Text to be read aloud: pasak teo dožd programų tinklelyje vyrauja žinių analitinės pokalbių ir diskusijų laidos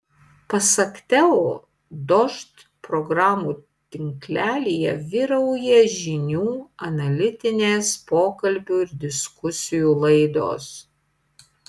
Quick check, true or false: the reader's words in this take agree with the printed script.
true